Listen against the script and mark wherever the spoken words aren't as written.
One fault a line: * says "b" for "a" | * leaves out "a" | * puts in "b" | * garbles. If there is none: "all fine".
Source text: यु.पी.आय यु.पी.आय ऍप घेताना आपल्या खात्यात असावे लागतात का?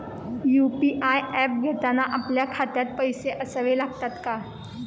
* leaves out "यु.पी.आय"
* puts in "पैसे"